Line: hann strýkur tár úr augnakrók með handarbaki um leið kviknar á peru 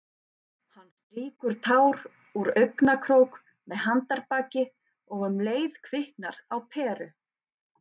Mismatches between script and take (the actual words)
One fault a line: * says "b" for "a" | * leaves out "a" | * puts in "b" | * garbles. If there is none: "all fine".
* puts in "og"